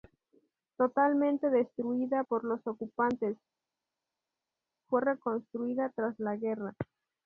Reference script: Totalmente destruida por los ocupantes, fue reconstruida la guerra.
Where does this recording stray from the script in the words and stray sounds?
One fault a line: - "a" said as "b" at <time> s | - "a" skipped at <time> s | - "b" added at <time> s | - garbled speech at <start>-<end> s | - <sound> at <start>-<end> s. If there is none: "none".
- "tras" added at 6.0 s